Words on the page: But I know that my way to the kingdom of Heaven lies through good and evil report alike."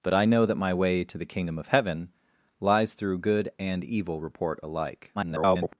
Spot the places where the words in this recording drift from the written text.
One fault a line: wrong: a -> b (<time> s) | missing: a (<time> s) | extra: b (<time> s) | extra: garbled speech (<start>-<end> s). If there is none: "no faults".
extra: garbled speech (5.1-5.8 s)